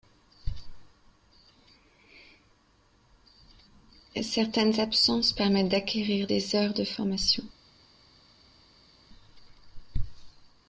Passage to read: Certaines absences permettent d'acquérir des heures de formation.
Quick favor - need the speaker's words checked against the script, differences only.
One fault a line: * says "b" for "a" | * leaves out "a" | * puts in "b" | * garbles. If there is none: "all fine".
all fine